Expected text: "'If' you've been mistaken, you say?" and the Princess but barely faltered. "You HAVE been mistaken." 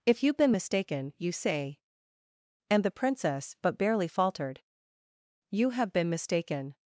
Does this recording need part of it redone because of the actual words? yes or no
no